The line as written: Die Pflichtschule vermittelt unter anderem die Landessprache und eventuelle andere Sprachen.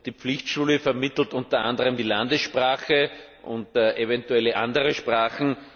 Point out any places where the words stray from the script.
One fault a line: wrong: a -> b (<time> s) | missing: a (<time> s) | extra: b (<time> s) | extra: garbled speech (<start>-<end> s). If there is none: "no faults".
no faults